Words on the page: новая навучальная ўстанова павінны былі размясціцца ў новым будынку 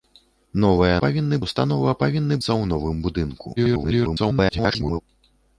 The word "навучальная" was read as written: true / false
false